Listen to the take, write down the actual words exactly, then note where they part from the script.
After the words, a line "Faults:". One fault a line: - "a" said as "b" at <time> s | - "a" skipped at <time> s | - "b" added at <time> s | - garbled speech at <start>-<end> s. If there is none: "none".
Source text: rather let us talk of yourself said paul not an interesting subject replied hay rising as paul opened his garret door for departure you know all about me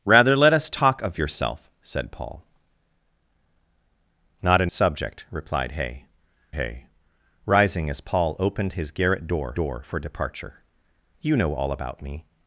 rather let us talk of yourself said paul not an subject replied hay hay rising as paul opened his garret door door for departure you know all about me
Faults:
- "interesting" skipped at 4.7 s
- "hay" added at 6.5 s
- "door" added at 9.5 s